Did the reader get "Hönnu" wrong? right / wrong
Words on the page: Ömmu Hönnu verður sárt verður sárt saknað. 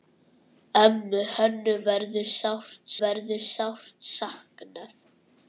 right